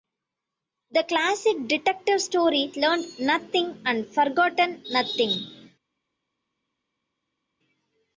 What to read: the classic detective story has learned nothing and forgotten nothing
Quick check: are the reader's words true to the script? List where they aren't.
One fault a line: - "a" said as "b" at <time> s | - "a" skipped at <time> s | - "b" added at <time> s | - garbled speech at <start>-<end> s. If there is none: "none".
- "has" skipped at 2.7 s